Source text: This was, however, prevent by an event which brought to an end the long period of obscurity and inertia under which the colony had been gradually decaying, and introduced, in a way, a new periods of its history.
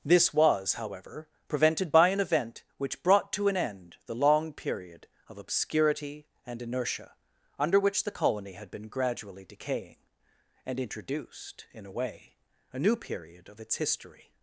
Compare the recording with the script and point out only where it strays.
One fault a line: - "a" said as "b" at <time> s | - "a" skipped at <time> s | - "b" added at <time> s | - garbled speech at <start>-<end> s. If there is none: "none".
- "prevent" said as "prevented" at 1.5 s
- "periods" said as "period" at 12.9 s